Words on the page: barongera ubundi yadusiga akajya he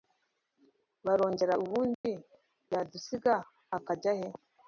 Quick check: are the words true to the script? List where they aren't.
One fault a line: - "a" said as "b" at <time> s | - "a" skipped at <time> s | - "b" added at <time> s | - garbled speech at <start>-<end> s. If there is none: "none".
none